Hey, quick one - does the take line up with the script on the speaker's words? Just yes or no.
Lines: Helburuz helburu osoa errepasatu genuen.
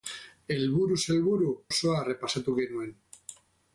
yes